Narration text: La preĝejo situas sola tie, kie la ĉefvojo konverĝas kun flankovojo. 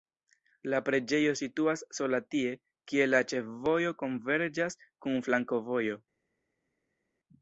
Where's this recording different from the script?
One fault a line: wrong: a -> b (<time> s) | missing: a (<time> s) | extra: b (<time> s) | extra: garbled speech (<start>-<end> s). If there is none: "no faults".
no faults